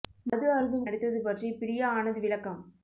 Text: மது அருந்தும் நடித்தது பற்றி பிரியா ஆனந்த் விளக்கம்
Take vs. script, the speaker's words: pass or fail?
pass